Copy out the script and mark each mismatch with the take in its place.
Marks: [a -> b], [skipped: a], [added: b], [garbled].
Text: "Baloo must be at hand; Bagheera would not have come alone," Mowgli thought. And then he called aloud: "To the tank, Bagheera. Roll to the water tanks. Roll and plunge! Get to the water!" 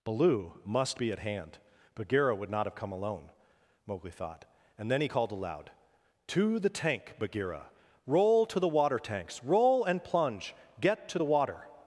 "Baloo must be at hand; Bagheera would not have come alone," Mowgli thought. And then he called aloud: "To the tank, Bagheera. Roll to the water tanks. Roll and plunge! Get to the water!"